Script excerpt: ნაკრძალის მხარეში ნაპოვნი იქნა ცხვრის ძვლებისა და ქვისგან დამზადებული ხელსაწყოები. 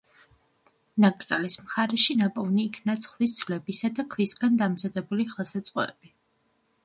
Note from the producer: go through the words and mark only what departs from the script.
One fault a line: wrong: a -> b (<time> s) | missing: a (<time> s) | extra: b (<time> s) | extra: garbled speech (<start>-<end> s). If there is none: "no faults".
no faults